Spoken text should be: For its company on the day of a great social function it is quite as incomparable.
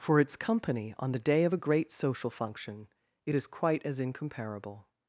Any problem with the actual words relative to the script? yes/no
no